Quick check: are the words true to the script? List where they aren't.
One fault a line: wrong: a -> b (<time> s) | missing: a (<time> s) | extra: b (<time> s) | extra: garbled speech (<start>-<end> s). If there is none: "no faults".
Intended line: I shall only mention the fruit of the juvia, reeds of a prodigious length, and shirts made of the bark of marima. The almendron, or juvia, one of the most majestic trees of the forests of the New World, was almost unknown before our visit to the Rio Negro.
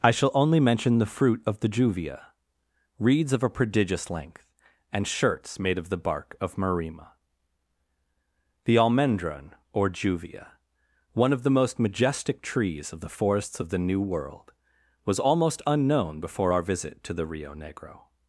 no faults